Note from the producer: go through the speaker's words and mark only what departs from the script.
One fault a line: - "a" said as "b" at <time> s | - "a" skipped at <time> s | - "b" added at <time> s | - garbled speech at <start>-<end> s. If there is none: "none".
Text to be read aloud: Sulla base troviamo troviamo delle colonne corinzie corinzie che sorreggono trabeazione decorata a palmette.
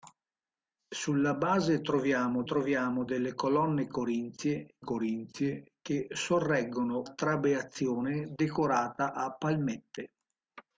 none